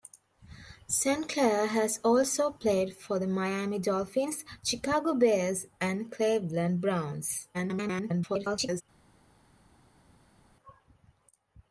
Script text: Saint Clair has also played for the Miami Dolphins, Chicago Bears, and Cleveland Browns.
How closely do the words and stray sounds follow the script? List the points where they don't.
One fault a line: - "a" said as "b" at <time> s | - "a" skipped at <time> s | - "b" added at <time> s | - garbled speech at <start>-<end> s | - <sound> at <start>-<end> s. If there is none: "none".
- garbled speech at 7.5-8.8 s